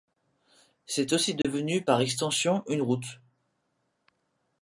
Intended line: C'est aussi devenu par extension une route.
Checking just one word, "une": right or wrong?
right